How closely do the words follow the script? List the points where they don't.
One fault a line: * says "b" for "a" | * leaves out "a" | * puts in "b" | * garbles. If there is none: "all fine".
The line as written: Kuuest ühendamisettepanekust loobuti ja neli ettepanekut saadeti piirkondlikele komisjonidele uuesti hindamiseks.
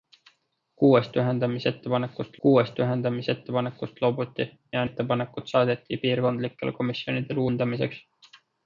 * puts in "kuuest ühendamisettepanekust"
* leaves out "neli"
* leaves out "uuesti"